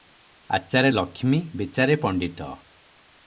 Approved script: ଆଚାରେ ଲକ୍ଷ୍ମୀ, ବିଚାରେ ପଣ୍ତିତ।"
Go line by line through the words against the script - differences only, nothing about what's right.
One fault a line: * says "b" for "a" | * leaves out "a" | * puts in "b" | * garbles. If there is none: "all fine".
all fine